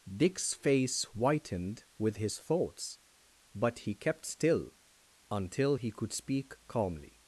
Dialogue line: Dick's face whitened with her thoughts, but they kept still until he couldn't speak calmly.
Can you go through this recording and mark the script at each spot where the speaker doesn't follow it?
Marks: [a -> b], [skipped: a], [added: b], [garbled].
Dick's face whitened with [her -> his] thoughts, but [they -> he] kept still until he [couldn't -> could] speak calmly.